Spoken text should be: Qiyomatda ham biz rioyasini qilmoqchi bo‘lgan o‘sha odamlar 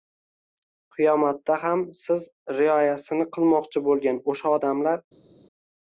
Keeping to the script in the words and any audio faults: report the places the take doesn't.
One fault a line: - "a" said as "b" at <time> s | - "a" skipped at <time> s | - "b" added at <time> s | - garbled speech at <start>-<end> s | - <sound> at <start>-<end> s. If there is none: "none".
- "biz" said as "siz" at 2.0 s